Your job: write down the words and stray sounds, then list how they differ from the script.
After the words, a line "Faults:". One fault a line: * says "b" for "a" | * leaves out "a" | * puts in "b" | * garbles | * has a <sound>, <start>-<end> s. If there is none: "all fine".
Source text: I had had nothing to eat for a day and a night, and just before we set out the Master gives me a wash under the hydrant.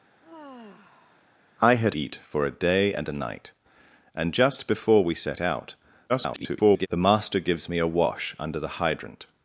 I had eat for a day and a night, and just before we set out [garbled] the Master gives me a wash under the hydrant.
Faults:
* has a sigh, 0.2-1.2 s
* leaves out "had nothing to"
* garbles